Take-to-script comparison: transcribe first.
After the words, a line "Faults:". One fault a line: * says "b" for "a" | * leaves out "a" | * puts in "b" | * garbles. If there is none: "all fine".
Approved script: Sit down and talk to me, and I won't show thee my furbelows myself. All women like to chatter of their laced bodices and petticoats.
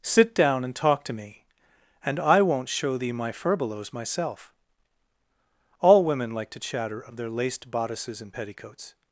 Sit down and talk to me, and I won't show thee my furbelows myself. All women like to chatter of their laced bodices and petticoats.
Faults:
all fine